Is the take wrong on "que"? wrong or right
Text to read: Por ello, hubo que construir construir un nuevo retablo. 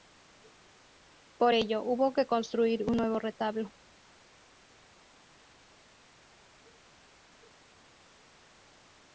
right